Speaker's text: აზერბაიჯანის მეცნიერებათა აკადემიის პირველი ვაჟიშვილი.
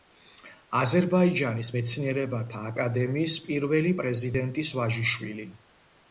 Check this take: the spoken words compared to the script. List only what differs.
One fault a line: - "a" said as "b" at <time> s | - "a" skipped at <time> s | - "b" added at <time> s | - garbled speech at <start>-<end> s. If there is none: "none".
- "პრეზიდენტის" added at 4.0 s